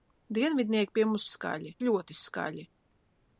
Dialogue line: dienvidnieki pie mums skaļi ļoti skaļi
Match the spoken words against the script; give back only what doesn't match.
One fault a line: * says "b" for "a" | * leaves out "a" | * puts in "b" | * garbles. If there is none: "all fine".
all fine